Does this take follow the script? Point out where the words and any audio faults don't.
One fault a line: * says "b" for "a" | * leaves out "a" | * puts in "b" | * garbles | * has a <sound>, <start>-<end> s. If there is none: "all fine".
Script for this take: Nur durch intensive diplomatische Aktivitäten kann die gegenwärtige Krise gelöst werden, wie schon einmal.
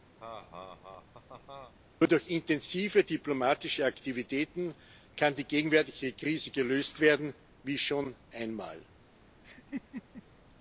* has a laugh, 0.2-1.7 s
* has a laugh, 9.4-10.2 s